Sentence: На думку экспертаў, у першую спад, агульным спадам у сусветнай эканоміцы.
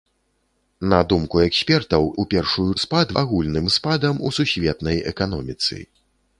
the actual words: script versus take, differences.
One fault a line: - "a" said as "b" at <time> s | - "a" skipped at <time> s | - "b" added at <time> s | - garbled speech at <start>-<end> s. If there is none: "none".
none